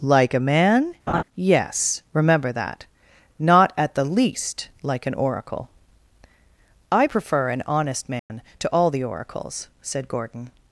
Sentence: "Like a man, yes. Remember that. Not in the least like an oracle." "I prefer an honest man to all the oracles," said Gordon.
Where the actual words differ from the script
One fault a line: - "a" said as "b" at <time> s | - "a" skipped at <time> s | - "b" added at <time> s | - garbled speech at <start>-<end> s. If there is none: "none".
- "in" said as "at" at 3.8 s